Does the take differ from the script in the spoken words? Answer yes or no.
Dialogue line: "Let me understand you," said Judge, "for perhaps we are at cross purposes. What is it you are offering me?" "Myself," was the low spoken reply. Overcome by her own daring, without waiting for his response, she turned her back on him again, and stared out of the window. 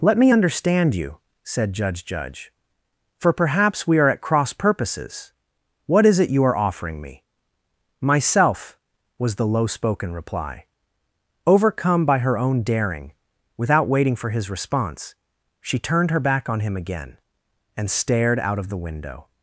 yes